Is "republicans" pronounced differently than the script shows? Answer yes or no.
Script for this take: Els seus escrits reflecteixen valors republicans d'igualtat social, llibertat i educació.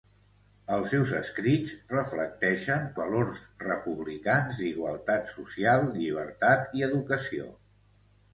no